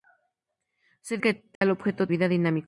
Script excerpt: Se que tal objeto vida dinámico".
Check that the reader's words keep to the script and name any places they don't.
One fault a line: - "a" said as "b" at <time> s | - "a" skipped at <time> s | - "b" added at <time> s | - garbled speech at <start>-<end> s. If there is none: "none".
none